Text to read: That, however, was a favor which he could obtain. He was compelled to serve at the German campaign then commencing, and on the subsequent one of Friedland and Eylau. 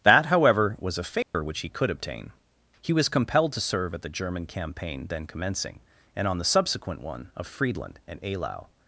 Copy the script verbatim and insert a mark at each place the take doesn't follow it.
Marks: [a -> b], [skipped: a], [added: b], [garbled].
That, however, was a favor which he could obtain. He was compelled to serve at the German campaign then commencing, and on the subsequent one of Friedland and Eylau.